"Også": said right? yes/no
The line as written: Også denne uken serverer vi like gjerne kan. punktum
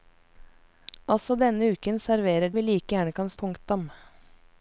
yes